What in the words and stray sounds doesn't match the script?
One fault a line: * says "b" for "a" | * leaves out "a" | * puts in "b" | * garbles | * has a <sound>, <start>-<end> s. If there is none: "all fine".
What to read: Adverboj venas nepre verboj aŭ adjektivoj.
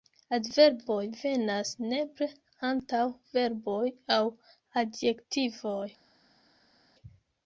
* puts in "antaŭ"